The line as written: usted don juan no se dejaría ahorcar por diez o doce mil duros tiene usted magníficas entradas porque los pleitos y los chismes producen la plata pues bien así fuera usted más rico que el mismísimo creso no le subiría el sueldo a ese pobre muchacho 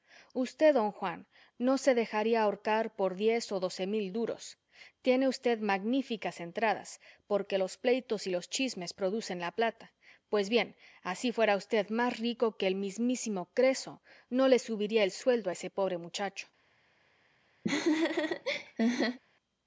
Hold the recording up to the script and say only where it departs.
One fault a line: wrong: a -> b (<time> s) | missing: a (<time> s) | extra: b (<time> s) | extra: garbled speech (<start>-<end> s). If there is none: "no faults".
no faults